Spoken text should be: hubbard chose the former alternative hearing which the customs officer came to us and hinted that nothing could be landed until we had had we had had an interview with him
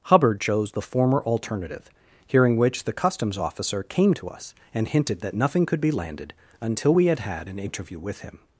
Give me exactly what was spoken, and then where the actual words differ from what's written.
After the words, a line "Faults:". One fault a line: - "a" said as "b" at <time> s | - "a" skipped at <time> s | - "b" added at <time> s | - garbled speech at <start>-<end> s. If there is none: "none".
hubbard chose the former alternative hearing which the customs officer came to us and hinted that nothing could be landed until we had had an interview with him
Faults:
- "we had had" skipped at 7.5 s